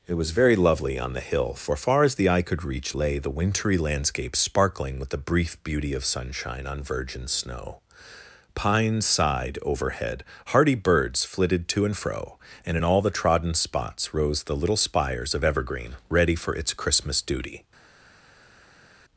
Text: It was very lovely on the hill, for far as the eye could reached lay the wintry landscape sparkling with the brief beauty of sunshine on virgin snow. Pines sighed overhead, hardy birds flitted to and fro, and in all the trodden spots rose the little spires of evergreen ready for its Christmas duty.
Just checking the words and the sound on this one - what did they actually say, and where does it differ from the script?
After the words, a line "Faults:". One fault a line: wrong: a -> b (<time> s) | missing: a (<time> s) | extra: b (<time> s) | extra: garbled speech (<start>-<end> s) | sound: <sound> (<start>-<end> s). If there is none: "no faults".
It was very lovely on the hill, for far as the eye could reach lay the wintry landscape sparkling with the brief beauty of sunshine on virgin snow. Pines sighed overhead, hardy birds flitted to and fro, and in all the trodden spots rose the little spires of evergreen ready for its Christmas duty.
Faults:
wrong: reached -> reach (2.6 s)